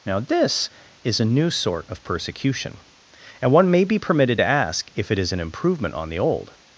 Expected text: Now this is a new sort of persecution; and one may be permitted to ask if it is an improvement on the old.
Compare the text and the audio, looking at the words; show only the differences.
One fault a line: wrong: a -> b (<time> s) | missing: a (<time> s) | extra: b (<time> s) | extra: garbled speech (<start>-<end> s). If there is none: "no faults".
no faults